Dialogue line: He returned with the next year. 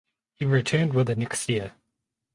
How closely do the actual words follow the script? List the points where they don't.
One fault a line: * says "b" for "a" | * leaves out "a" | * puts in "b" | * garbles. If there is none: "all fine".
all fine